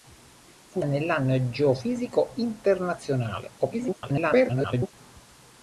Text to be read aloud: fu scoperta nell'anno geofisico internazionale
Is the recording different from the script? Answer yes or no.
yes